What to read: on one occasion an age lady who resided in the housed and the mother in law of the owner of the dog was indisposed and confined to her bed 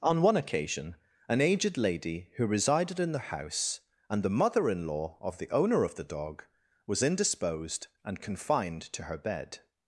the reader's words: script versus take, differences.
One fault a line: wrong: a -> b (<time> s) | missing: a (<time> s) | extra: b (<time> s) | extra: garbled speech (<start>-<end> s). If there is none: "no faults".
wrong: age -> aged (1.4 s)
wrong: housed -> house (3.3 s)